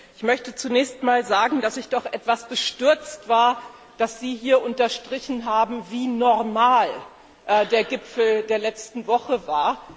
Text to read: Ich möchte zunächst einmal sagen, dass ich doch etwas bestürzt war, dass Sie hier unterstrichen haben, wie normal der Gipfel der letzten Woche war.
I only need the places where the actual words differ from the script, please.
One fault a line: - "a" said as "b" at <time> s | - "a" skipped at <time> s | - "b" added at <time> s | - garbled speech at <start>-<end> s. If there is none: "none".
none